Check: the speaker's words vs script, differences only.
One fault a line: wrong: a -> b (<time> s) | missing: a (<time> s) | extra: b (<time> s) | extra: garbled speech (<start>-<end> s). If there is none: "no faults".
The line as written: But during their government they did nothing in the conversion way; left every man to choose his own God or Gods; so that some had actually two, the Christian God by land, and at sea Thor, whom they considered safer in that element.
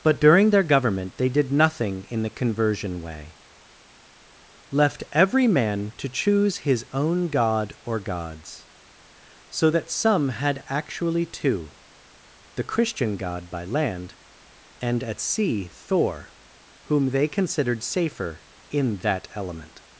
no faults